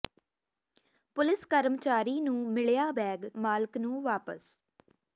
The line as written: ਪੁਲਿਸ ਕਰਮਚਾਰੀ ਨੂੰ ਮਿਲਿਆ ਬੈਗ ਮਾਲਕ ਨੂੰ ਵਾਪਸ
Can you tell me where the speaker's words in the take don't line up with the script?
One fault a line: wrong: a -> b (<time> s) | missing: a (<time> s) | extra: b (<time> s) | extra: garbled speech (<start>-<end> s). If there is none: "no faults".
no faults